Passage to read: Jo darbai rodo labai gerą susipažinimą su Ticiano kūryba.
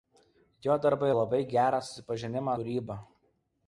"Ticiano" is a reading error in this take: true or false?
true